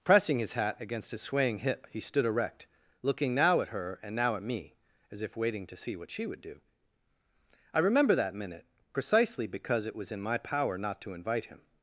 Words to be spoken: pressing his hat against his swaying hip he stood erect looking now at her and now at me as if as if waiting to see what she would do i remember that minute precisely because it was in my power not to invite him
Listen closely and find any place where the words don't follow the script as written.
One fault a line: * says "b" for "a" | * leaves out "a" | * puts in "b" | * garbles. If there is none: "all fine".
* leaves out "as if"